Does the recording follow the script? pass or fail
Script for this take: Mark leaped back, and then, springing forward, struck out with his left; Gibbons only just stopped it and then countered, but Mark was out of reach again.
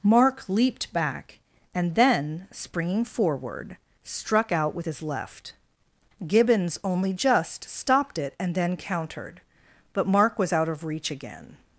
pass